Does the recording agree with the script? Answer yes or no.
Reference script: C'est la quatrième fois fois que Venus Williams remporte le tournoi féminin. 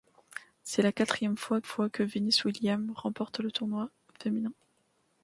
yes